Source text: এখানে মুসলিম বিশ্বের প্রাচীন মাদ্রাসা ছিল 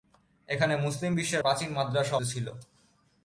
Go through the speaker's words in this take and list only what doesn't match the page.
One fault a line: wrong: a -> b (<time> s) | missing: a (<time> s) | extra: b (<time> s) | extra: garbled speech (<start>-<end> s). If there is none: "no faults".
no faults